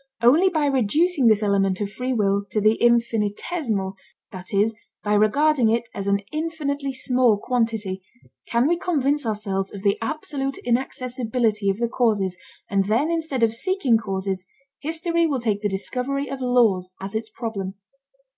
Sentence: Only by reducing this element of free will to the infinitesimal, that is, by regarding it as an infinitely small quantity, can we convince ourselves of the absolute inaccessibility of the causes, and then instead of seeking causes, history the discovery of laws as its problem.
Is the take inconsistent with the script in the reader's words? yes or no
yes